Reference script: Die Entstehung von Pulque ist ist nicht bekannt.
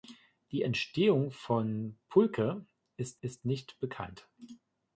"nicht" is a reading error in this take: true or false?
false